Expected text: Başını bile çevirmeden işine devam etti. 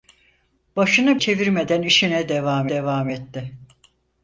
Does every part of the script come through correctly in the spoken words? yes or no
no